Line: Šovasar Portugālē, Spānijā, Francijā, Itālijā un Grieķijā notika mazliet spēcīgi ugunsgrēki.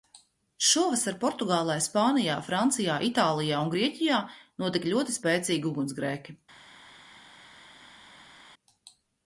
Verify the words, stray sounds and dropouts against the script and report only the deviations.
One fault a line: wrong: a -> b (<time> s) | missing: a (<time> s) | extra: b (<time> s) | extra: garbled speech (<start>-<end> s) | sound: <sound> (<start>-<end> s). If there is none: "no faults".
wrong: mazliet -> ļoti (5.0 s)